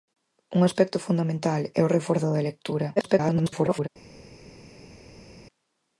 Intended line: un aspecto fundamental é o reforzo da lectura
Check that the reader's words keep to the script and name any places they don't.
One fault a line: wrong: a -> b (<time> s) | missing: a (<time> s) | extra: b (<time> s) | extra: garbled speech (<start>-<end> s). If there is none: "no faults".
extra: garbled speech (3.0-3.9 s)